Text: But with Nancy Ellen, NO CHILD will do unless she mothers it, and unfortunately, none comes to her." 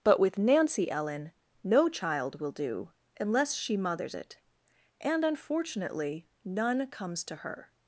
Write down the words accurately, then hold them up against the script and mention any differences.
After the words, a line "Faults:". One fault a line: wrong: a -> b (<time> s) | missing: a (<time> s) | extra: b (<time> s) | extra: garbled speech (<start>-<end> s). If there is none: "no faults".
But with Nancy Ellen, NO CHILD will do unless she mothers it, and unfortunately, none comes to her."
Faults:
no faults